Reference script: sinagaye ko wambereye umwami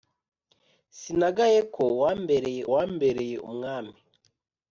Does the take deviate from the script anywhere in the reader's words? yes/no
yes